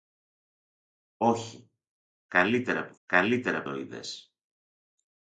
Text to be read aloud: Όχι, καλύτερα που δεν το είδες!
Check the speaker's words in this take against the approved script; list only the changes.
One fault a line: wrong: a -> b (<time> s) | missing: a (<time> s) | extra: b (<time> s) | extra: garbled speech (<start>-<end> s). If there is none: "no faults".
wrong: δεν -> καλύτερα (3.1 s)